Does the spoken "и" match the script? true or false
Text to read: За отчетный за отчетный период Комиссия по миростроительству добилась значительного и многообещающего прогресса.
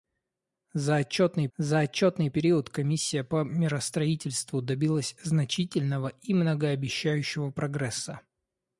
true